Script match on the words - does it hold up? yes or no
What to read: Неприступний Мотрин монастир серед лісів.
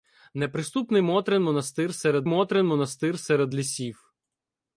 no